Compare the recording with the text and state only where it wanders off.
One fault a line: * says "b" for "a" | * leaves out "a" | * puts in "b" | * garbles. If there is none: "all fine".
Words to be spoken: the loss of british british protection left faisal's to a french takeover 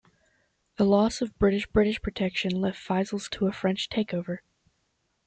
all fine